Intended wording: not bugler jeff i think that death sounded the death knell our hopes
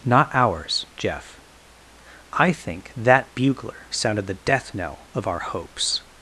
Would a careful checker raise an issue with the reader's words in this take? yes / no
yes